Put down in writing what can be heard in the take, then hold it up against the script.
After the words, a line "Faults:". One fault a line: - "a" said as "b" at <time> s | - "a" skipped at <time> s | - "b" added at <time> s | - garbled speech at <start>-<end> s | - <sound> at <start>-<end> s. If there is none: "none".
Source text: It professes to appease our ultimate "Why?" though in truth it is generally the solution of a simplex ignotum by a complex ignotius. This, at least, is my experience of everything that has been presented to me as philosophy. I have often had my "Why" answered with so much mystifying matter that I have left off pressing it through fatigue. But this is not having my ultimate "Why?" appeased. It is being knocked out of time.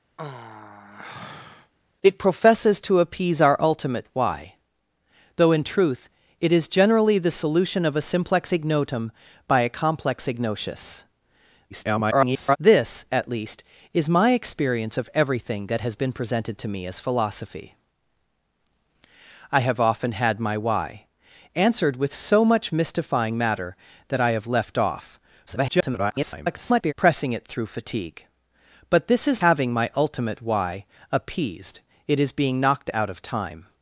It professes to appease our ultimate "Why?" though in truth it is generally the solution of a simplex ignotum by a complex ignotius. [garbled] This, at least, is my experience of everything that has been presented to me as philosophy. I have often had my "Why" answered with so much mystifying matter that I have left off [garbled] pressing it through fatigue. But this is having my ultimate "Why?" appeased. It is being knocked out of time.
Faults:
- sigh at 0.2-1.7 s
- garbled speech at 11.7-12.6 s
- garbled speech at 25.5-26.9 s
- "not" skipped at 29.4 s